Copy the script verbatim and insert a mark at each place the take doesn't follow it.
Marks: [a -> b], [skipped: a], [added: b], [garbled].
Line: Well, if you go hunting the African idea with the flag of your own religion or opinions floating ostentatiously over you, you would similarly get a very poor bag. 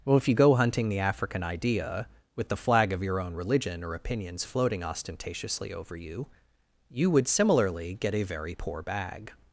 Well, if you go hunting the African idea with the flag of your own religion or opinions floating ostentatiously over you, you would similarly get a very poor bag.